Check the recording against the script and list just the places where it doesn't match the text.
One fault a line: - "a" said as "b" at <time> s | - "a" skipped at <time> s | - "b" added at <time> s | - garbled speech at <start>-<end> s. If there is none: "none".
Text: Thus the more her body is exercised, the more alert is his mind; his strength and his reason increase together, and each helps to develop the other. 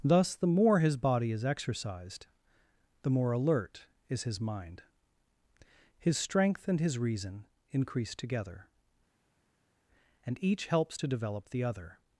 - "her" said as "his" at 0.8 s